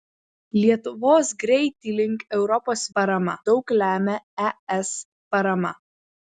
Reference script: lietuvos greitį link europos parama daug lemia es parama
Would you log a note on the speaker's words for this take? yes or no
no